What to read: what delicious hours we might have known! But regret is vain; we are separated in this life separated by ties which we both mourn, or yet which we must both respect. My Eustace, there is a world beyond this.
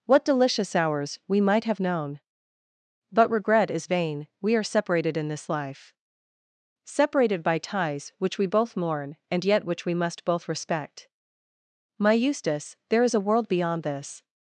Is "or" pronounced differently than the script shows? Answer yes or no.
yes